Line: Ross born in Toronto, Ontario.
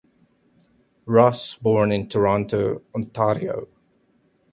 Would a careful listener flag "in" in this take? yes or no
no